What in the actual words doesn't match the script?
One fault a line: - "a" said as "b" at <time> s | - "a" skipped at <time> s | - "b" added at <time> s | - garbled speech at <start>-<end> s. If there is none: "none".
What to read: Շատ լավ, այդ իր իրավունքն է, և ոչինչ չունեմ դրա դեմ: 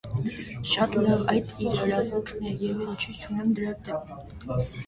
none